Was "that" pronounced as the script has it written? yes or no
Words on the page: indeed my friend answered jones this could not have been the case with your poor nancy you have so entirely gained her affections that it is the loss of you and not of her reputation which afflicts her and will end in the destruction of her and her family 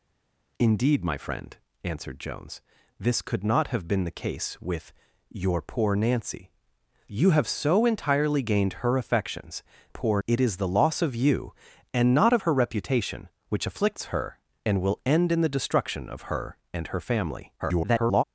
no